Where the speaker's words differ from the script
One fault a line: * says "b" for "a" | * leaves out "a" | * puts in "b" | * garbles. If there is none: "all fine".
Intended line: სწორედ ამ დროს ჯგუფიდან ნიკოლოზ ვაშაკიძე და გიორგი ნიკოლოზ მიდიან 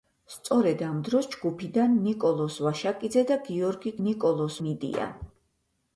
all fine